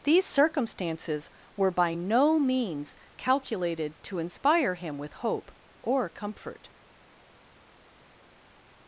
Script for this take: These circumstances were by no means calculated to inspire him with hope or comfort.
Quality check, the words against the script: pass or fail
pass